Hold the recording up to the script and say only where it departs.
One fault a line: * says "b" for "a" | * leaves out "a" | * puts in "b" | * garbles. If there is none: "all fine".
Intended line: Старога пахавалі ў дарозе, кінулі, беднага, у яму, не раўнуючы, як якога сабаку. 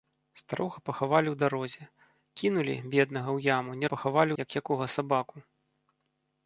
* says "пахавалі" for "раўнуючы"